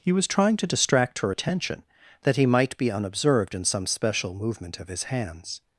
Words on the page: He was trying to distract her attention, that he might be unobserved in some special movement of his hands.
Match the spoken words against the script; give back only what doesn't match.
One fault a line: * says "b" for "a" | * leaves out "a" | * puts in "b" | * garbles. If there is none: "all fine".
all fine